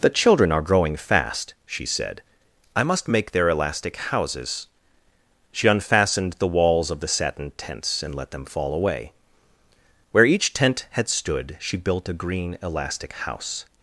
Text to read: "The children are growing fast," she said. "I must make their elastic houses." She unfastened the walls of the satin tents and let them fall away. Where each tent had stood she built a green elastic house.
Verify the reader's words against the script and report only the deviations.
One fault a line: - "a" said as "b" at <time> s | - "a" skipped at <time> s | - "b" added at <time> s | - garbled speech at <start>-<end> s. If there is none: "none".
none